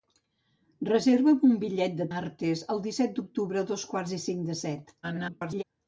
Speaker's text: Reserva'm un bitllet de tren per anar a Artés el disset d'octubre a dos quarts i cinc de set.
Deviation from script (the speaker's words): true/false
true